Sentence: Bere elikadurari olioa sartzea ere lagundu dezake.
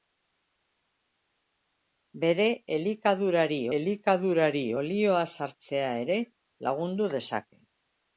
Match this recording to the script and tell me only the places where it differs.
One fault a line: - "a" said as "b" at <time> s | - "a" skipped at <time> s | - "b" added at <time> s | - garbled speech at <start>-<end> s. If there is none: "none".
- "elikadurari" added at 3.8 s